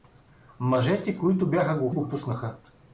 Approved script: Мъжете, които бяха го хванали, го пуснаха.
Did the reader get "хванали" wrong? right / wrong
wrong